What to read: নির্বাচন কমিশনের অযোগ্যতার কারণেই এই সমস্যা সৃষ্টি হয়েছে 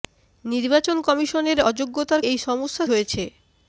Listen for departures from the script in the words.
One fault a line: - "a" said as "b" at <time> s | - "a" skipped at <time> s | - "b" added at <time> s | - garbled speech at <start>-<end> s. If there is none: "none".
- "কারণেই" skipped at 2.2 s
- "সৃষ্টি" skipped at 2.8 s